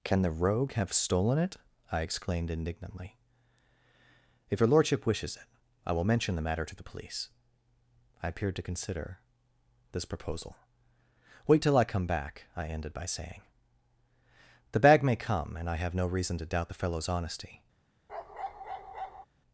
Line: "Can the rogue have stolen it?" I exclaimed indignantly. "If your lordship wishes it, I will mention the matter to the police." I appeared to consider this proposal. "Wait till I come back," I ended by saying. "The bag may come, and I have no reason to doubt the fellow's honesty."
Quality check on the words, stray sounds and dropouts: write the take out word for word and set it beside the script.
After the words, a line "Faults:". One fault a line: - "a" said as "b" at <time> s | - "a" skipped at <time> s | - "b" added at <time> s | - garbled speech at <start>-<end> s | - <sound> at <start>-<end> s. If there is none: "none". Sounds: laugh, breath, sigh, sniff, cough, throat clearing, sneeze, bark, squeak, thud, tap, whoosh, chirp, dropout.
"Can the rogue have stolen it?" I exclaimed indignantly. "If your lordship wishes it, I will mention the matter to the police." I appeared to consider this proposal. "Wait till I come back," I ended by saying. "The bag may come, and I have no reason to doubt the fellow's honesty."
Faults:
- bark at 18.1-19.3 s